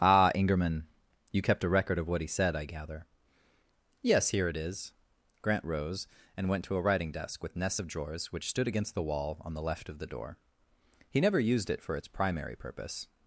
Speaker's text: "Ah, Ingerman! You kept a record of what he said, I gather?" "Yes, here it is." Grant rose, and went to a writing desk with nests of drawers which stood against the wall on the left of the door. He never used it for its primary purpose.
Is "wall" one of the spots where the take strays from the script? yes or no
no